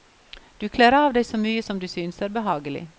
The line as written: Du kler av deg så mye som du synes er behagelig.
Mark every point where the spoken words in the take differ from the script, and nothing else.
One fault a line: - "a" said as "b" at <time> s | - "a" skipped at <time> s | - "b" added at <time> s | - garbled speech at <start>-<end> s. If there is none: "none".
none